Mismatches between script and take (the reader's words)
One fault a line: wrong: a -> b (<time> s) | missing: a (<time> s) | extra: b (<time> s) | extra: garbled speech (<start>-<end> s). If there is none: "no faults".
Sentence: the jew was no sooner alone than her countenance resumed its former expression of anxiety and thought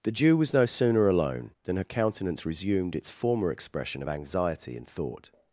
no faults